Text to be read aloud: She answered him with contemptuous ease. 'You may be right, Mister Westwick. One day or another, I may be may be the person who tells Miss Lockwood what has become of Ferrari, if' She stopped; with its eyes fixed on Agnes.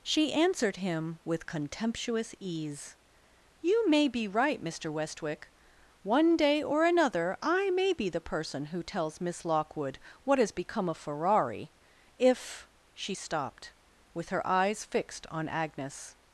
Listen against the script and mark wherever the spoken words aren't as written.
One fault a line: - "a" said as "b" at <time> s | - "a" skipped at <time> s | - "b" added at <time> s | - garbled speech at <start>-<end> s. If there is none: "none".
- "may be" skipped at 8.1 s
- "its" said as "her" at 14.3 s